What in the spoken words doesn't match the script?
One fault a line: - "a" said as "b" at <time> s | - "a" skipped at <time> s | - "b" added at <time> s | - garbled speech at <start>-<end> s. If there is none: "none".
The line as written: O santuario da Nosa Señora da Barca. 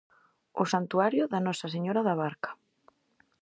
none